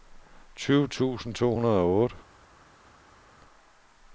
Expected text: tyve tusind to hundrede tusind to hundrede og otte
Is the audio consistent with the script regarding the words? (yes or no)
no